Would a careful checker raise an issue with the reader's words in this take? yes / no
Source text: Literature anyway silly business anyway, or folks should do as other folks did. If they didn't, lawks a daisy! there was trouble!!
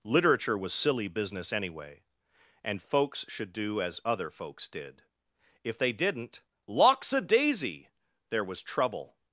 yes